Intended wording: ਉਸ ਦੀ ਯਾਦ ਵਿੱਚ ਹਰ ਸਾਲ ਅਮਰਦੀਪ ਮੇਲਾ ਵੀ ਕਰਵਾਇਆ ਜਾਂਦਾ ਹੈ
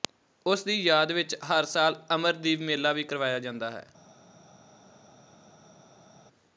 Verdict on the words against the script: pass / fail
pass